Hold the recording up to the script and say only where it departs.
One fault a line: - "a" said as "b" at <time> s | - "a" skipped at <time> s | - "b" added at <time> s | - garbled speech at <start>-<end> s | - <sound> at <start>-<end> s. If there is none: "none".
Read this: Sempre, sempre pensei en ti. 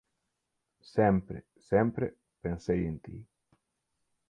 none